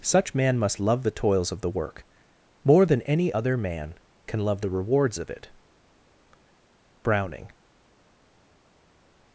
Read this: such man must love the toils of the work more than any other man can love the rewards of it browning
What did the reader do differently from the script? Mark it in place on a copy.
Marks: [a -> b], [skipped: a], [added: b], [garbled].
such man must love the toils of the work more than any other man can love the rewards of it browning